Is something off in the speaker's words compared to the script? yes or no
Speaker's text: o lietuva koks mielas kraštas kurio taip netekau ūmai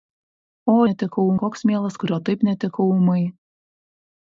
yes